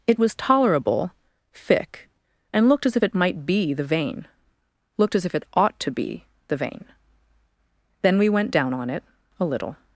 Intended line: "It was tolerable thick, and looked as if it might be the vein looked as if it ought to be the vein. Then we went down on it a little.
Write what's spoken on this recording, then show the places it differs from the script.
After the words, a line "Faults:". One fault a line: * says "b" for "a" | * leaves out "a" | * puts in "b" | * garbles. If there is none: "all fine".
"It was tolerable thick, and looked as if it might be the vein looked as if it ought to be the vein. Then we went down on it a little.
Faults:
all fine